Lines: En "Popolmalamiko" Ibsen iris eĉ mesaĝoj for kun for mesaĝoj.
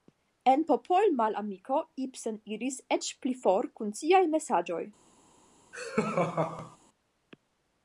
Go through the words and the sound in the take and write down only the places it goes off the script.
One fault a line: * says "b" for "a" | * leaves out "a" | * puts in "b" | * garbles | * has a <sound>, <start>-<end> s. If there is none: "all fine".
* says "pli" for "mesaĝoj"
* says "siaj" for "for"
* has a laugh, 5.7-6.8 s